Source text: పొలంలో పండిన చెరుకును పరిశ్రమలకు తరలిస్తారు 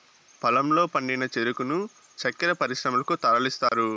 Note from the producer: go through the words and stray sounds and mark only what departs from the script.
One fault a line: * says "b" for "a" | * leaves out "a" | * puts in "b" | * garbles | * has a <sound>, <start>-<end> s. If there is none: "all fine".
* puts in "చక్కర"
* has a dropout, 3.7-3.7 s